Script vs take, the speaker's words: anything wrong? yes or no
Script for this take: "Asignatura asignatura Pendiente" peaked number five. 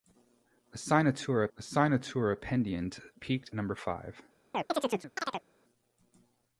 no